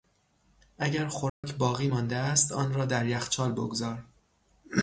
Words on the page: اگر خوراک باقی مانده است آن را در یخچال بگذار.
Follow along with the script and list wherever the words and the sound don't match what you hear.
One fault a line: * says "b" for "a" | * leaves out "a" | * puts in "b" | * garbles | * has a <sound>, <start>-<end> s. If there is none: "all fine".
* has a dropout, 1.3-1.4 s